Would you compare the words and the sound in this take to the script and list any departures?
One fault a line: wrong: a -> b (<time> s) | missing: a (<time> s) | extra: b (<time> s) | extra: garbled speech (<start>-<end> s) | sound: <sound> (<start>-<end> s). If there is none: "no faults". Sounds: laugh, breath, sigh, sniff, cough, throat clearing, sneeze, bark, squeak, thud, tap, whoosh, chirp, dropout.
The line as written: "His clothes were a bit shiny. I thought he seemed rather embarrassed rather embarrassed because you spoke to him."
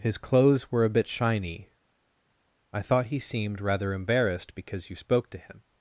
missing: rather embarrassed (4.6 s)